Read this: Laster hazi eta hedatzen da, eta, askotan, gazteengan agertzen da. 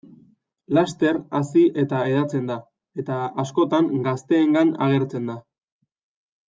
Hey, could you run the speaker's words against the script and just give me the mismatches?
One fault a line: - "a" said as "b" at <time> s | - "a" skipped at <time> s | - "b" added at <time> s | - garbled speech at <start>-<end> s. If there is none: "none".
none